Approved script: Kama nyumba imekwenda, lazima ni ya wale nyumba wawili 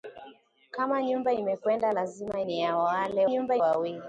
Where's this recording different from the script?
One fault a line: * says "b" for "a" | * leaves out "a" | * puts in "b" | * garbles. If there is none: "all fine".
all fine